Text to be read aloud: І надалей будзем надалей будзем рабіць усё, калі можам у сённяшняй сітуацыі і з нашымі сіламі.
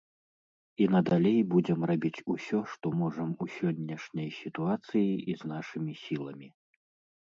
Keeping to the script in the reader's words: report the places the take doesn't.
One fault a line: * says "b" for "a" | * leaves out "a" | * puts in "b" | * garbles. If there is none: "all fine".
* leaves out "надалей будзем"
* says "што" for "калі"